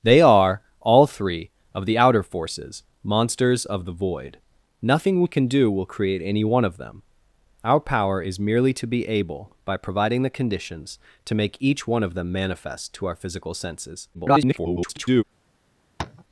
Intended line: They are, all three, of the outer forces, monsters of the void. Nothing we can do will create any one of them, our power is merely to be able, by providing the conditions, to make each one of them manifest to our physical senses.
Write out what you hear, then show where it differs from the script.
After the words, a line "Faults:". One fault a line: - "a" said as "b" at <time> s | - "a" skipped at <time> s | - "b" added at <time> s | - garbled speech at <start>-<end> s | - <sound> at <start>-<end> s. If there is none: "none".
They are, all three, of the outer forces, monsters of the void. Nothing we can do will create any one of them, our power is merely to be able, by providing the conditions, to make each one of them manifest to our physical senses. [garbled]
Faults:
- garbled speech at 14.1-15.2 s
- tap at 16.0-16.2 s